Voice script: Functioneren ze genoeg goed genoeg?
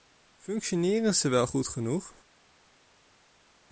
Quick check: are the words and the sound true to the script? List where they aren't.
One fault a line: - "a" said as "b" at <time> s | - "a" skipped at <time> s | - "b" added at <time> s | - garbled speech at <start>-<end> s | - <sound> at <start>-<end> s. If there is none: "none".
- "genoeg" said as "wel" at 1.3 s